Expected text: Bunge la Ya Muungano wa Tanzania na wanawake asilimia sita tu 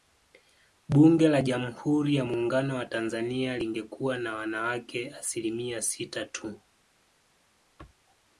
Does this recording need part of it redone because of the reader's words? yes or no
yes